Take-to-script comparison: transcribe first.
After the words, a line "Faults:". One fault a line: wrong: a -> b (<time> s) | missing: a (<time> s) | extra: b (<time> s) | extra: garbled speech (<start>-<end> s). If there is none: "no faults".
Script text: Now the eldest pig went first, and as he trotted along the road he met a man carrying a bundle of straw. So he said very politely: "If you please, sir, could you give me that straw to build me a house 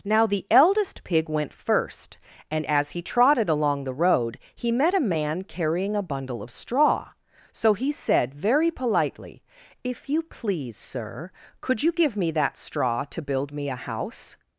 Now the eldest pig went first, and as he trotted along the road he met a man carrying a bundle of straw. So he said very politely: "If you please, sir, could you give me that straw to build me a house
Faults:
no faults